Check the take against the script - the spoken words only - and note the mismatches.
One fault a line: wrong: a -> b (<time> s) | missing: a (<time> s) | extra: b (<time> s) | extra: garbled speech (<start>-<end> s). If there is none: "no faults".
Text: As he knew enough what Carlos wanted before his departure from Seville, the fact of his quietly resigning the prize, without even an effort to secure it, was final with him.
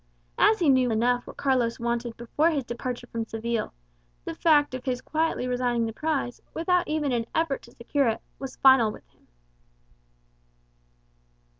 no faults